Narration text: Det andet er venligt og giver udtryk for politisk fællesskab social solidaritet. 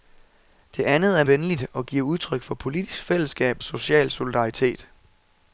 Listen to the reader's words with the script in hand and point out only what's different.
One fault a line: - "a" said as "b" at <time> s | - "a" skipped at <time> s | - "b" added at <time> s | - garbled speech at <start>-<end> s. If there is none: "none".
none